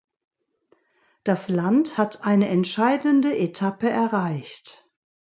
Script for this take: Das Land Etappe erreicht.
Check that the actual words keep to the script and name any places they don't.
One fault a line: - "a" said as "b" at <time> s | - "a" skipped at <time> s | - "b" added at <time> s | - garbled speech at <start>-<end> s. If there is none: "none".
- "hat eine entscheidende" added at 2.0 s